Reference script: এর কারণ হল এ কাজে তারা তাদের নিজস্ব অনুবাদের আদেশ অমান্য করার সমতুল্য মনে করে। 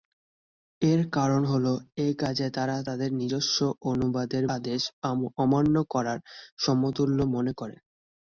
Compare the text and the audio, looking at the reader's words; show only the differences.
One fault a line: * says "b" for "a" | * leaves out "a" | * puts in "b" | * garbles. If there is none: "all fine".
all fine